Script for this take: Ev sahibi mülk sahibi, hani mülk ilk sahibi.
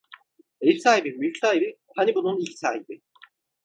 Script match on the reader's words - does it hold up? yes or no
no